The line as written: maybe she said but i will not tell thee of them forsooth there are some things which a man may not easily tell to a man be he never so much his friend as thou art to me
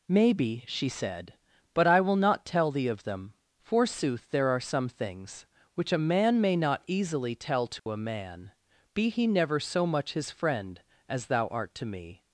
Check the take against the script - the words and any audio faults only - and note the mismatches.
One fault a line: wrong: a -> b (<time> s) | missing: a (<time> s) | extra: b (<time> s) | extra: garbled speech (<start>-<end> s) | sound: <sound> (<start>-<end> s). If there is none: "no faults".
sound: dropout (7.8-7.9 s)